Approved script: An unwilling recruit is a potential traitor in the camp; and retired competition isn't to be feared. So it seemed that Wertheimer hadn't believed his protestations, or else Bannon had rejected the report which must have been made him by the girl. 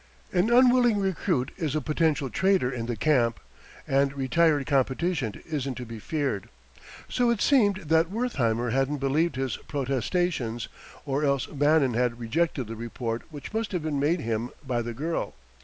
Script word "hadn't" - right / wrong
right